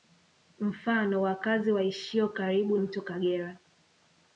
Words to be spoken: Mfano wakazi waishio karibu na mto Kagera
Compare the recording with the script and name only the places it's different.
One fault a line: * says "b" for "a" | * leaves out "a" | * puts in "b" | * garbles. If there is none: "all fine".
* leaves out "na"